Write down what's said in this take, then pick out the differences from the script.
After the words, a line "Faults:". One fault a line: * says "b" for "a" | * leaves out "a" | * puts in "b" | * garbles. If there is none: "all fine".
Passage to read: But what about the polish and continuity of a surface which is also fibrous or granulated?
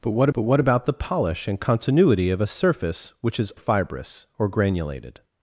But what but what about the polish and continuity of a surface which is fibrous or granulated?
Faults:
* puts in "but what"
* leaves out "also"